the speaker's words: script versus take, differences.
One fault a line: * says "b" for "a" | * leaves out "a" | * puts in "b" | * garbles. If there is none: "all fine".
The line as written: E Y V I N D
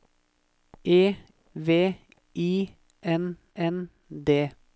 * leaves out "Y"
* puts in "N"